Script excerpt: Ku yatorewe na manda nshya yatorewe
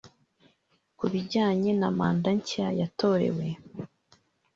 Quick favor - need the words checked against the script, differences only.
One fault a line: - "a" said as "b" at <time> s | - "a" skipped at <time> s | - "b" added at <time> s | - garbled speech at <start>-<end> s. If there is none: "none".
- "yatorewe" said as "bijyanye" at 1.1 s